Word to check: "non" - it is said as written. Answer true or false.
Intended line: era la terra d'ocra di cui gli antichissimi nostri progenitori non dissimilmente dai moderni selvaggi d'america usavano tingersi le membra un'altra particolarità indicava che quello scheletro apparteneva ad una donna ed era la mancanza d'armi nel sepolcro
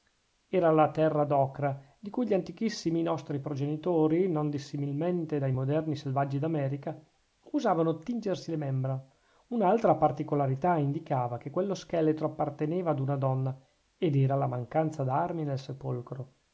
true